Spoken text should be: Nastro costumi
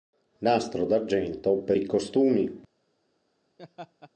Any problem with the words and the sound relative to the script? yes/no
yes